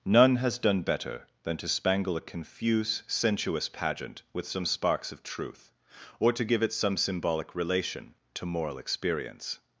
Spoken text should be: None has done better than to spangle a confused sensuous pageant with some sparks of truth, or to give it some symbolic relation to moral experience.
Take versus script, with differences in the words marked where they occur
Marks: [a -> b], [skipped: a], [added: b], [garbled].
None has done better than to spangle a [confused -> confuse] sensuous pageant with some sparks of truth, or to give it some symbolic relation to moral experience.